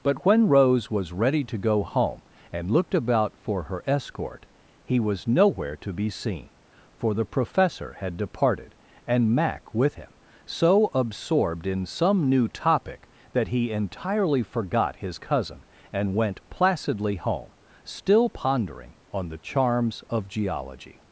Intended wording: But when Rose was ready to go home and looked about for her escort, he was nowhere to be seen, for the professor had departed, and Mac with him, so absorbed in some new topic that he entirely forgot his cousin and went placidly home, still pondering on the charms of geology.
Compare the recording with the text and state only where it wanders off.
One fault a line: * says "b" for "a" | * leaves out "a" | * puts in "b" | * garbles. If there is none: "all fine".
all fine